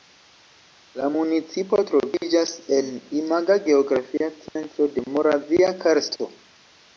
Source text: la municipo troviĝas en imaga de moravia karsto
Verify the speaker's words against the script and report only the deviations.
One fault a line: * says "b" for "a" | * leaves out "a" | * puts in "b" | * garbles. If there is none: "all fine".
* puts in "geografia centro"